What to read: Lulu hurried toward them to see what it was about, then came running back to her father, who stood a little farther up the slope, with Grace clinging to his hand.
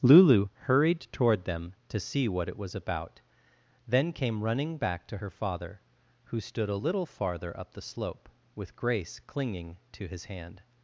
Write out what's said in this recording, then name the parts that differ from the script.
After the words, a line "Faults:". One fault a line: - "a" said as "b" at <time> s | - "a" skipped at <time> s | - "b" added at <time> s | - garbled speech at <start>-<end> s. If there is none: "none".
Lulu hurried toward them to see what it was about, then came running back to her father, who stood a little farther up the slope, with Grace clinging to his hand.
Faults:
none